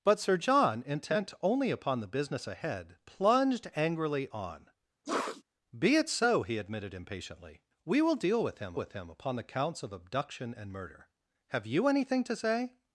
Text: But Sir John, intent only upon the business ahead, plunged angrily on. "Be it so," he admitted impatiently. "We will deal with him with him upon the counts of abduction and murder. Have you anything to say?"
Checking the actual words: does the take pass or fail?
pass